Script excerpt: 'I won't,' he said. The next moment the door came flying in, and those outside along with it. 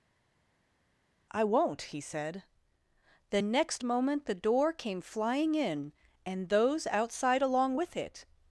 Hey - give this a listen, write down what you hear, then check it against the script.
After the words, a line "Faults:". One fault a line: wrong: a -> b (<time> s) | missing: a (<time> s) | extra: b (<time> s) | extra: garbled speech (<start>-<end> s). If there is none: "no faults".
'I won't,' he said. The next moment the door came flying in, and those outside along with it.
Faults:
no faults